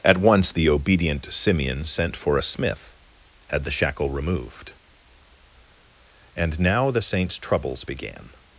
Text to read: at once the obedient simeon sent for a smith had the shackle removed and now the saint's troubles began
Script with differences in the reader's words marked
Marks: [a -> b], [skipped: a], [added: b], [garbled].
at once the obedient simeon sent for a smith had the shackle removed and now the saint's troubles began